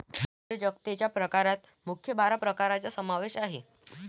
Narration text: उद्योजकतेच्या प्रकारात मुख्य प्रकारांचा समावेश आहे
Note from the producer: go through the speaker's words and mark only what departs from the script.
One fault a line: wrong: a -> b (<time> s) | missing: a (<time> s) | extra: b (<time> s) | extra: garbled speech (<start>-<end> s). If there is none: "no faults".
extra: बारा (2.1 s)